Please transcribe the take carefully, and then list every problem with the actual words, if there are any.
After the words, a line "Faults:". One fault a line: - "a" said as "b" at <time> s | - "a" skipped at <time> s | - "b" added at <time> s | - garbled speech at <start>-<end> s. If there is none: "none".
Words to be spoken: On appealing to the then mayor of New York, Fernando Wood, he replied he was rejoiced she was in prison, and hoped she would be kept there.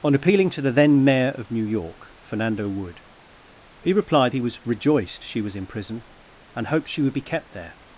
On appealing to the then mayor of New York, Fernando Wood, he replied he was rejoiced she was in prison, and hoped she would be kept there.
Faults:
none